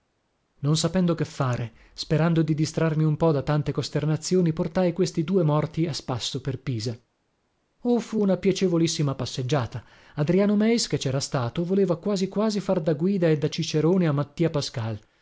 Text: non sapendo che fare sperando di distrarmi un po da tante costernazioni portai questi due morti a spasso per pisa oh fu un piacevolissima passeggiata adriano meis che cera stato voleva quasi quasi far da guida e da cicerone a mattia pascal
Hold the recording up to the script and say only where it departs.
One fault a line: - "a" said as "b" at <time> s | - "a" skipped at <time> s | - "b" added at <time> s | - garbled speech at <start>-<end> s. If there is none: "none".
- "un" said as "una" at 8.2 s